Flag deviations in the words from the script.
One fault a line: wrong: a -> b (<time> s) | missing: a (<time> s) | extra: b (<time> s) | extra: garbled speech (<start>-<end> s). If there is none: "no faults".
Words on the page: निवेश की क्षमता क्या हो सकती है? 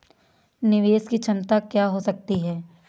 no faults